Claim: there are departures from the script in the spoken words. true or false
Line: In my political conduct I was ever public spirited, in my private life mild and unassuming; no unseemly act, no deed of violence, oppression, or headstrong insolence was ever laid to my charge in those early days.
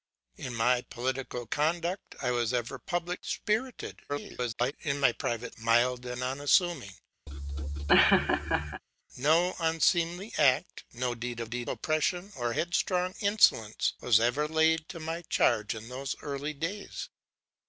true